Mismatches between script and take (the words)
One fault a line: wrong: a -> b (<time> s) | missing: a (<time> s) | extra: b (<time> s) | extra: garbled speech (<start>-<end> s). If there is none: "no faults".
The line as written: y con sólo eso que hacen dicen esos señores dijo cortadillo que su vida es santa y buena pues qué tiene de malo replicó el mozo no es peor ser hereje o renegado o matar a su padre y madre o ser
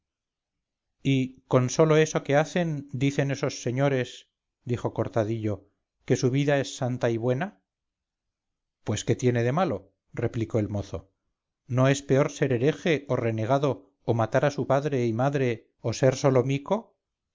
no faults